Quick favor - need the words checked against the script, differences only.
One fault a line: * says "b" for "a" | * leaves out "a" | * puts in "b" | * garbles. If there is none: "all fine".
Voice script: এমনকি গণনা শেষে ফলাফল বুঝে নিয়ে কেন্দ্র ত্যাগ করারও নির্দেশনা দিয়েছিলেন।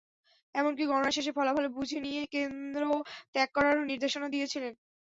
all fine